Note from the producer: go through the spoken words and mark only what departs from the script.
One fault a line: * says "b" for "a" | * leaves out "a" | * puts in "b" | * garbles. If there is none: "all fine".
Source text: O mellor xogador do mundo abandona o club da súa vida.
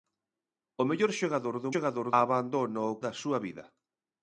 * says "xogador" for "mundo"
* leaves out "club"